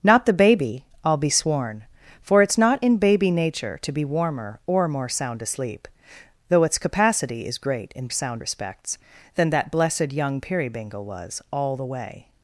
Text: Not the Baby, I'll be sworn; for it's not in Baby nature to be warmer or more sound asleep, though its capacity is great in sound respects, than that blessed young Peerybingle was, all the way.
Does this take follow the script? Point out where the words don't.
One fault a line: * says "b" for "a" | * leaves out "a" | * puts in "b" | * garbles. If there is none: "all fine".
all fine